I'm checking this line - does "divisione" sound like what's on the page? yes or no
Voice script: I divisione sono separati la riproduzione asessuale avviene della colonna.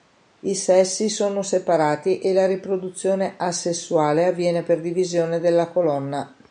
no